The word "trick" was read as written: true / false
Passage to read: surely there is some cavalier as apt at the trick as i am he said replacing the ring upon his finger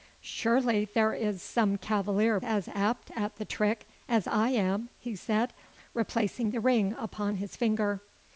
true